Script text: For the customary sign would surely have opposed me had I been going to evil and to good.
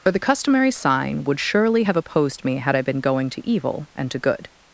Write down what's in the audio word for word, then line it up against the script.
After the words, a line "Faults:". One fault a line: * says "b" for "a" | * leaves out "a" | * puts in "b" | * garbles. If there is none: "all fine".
For the customary sign would surely have opposed me had I been going to evil and to good.
Faults:
all fine